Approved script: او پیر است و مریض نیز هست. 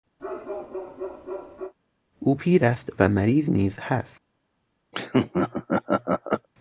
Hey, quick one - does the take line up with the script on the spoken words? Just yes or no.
yes